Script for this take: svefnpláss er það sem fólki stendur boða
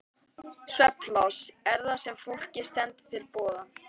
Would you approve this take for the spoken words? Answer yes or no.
no